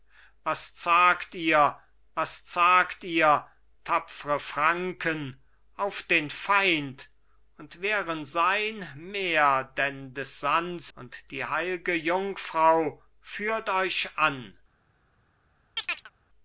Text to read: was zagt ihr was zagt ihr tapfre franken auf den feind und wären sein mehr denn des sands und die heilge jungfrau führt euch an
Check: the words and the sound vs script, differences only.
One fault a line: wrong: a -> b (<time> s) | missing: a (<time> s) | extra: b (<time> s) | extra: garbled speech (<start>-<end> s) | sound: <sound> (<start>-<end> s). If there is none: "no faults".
sound: chirp (15.8-16.1 s)